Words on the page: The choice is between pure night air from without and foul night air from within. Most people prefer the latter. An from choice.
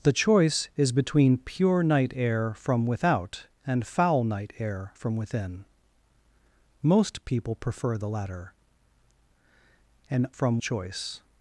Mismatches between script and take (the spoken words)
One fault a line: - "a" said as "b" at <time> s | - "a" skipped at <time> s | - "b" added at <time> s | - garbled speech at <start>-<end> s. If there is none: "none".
none